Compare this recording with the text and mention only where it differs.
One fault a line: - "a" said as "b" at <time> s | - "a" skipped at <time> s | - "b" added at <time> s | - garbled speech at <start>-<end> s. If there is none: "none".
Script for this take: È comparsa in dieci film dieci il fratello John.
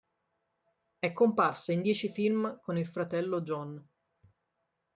- "dieci" said as "con" at 2.6 s